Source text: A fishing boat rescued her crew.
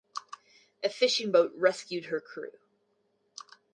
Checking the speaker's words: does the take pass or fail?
pass